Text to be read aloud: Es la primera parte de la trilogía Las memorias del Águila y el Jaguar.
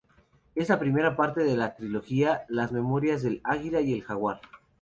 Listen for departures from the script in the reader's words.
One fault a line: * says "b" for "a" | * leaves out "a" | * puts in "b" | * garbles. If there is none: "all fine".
all fine